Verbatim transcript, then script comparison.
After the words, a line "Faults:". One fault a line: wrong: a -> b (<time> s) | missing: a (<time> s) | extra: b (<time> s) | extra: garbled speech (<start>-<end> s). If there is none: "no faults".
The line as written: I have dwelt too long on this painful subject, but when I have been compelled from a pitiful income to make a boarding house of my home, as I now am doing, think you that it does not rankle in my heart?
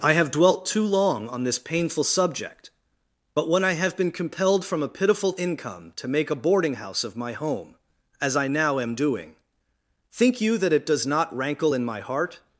I have dwelt too long on this painful subject, but when I have been compelled from a pitiful income to make a boarding house of my home, as I now am doing, think you that it does not rankle in my heart?
Faults:
no faults